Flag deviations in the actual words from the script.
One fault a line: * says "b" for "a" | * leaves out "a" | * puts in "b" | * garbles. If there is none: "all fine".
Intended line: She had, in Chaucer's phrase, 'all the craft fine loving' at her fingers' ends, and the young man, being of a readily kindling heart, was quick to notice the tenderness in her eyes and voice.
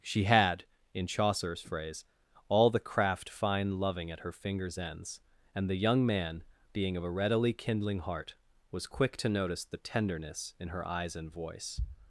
all fine